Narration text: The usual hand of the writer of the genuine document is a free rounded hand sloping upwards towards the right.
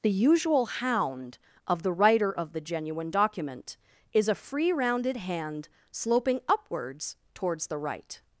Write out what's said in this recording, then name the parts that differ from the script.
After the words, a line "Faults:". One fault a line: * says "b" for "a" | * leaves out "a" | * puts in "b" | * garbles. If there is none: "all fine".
The usual hound of the writer of the genuine document is a free rounded hand sloping upwards towards the right.
Faults:
* says "hound" for "hand"